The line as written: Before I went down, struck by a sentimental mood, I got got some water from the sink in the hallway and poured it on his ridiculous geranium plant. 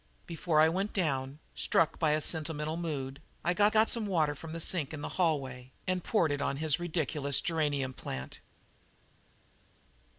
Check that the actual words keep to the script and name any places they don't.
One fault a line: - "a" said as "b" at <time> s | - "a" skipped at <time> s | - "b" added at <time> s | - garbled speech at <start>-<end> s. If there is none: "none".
none